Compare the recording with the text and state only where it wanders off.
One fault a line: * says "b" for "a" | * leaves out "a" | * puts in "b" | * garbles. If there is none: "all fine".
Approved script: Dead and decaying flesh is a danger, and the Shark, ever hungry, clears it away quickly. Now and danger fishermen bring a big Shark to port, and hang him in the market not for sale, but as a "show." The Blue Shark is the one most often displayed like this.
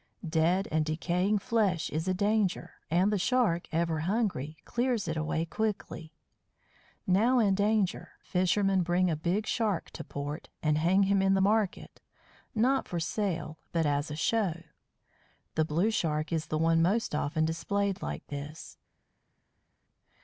all fine